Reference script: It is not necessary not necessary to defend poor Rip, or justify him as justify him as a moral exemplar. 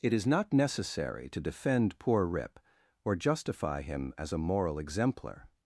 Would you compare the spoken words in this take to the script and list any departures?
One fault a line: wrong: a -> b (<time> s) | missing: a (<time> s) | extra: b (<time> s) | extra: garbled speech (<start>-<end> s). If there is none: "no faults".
missing: not necessary (1.3 s)
missing: justify him as (4.3 s)